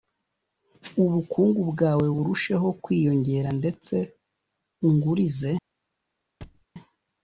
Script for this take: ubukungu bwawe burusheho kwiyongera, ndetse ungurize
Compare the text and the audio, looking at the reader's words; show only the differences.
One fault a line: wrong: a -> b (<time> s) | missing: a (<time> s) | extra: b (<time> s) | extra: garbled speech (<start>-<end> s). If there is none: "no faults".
no faults